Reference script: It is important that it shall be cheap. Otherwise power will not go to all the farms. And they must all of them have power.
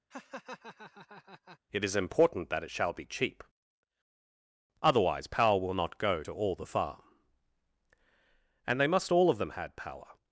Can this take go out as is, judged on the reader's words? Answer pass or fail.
fail